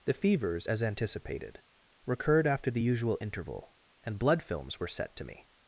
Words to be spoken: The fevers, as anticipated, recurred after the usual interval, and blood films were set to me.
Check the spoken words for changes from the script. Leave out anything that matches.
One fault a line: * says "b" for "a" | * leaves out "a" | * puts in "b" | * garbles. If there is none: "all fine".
all fine